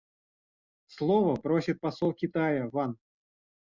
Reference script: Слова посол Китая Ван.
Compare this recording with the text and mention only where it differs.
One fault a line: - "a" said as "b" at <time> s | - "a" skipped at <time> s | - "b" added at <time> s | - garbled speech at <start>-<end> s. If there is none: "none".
- "просит" added at 1.4 s